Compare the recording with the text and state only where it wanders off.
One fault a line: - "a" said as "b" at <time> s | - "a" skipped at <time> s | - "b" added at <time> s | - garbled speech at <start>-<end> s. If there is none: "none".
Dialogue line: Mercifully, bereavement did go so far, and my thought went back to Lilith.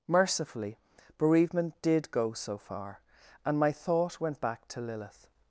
none